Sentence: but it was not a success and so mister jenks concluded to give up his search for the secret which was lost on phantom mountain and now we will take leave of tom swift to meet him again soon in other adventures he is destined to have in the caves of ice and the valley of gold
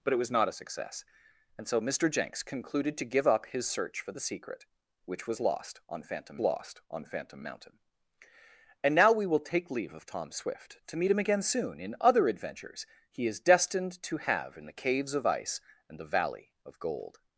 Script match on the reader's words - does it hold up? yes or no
no